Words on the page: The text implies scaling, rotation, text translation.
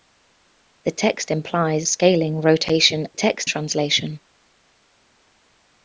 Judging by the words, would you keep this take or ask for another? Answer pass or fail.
pass